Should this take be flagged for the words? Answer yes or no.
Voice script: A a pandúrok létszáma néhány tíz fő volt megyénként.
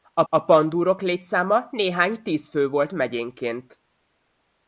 no